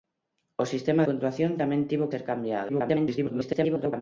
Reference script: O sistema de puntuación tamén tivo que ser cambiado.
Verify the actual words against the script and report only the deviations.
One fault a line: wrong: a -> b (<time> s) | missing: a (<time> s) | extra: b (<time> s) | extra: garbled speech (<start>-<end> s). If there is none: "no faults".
missing: de (1.0 s)
missing: que (2.1 s)
extra: garbled speech (2.7-4.0 s)